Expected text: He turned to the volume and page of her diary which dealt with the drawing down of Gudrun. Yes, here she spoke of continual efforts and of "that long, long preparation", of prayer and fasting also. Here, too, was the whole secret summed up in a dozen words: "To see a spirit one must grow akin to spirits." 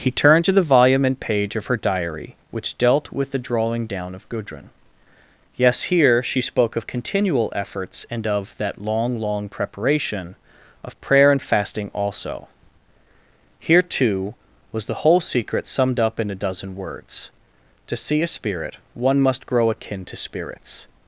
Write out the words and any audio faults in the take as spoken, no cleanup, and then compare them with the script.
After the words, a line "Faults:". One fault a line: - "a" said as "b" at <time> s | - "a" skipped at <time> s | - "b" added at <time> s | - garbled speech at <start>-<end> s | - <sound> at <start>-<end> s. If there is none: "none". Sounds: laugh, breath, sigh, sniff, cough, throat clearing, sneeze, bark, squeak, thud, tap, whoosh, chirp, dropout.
He turned to the volume and page of her diary which dealt with the drawing down of Gudrun. Yes, here she spoke of continual efforts and of "that long, long preparation", of prayer and fasting also. Here, too, was the whole secret summed up in a dozen words: "To see a spirit one must grow akin to spirits."
Faults:
none